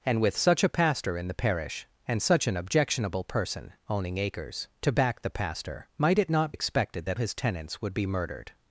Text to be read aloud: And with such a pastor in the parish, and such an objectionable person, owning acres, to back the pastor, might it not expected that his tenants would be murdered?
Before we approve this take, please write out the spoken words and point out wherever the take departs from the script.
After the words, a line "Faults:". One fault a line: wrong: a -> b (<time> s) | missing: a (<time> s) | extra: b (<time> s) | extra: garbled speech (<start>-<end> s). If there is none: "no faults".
And with such a pastor in the parish, and such an objectionable person, owning acres, to back the pastor, might it not expected that his tenants would be murdered?
Faults:
no faults